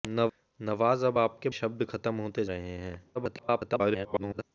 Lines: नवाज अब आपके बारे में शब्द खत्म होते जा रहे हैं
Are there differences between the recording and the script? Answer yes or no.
yes